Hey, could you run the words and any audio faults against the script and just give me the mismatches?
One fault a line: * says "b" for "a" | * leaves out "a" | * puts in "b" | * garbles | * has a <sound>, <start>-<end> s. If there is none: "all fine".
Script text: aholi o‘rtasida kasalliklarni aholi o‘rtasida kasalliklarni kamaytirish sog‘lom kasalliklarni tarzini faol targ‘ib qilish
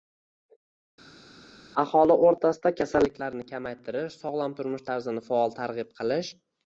* leaves out "aholi o‘rtasida kasalliklarni"
* says "turmush" for "kasalliklarni"